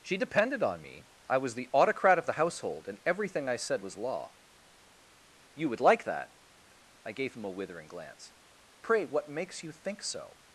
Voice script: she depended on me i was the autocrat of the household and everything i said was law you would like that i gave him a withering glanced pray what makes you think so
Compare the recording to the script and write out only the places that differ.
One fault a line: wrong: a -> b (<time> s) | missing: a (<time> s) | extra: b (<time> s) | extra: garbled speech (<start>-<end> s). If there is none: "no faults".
wrong: glanced -> glance (7.9 s)